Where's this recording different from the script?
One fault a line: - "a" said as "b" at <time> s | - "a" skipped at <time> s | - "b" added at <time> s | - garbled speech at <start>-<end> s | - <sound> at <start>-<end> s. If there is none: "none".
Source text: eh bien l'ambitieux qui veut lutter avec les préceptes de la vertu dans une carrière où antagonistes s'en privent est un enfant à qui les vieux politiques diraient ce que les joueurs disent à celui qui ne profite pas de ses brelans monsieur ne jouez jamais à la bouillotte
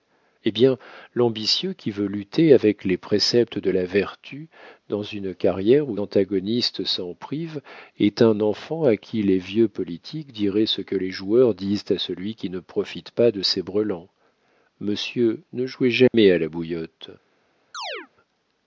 - dropout at 16.1-16.1 s
- chirp at 17.7-18.1 s